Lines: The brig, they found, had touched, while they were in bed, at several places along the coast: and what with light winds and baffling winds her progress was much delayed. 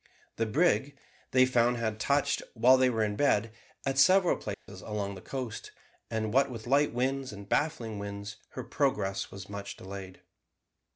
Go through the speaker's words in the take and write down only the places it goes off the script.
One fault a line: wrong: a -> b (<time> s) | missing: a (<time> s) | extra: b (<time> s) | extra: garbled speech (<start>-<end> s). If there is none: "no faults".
no faults